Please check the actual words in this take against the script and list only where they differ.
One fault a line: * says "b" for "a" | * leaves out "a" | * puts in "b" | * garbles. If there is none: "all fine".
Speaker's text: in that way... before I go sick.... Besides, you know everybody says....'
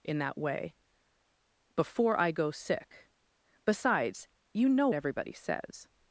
all fine